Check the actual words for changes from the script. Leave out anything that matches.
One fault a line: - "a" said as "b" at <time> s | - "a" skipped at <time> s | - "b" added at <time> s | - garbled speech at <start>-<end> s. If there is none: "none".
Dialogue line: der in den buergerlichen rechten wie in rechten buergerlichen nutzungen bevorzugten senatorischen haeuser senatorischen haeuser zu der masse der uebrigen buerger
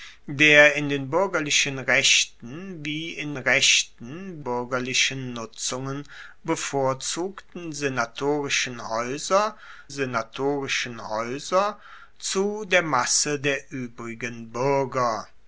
none